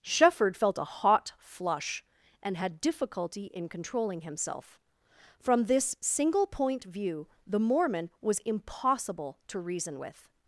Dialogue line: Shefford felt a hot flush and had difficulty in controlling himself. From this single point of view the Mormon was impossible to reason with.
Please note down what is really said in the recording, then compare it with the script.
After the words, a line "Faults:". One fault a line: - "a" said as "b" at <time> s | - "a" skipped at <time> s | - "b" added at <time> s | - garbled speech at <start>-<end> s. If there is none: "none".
Shefford felt a hot flush and had difficulty in controlling himself. From this single point view the Mormon was impossible to reason with.
Faults:
- "of" skipped at 6.8 s